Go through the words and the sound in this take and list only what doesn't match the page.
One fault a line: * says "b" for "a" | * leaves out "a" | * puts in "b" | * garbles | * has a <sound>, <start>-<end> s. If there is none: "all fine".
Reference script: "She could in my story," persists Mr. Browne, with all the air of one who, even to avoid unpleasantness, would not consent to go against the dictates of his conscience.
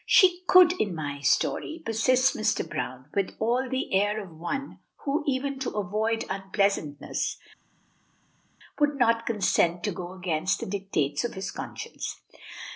all fine